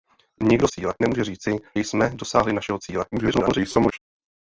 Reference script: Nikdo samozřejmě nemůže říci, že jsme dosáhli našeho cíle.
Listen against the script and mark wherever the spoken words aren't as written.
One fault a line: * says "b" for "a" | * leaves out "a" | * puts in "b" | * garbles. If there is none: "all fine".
* says "cíle" for "samozřejmě"
* leaves out "že"
* garbles